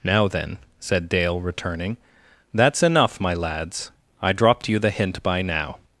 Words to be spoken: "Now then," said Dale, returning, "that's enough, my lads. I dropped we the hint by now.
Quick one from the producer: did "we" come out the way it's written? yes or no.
no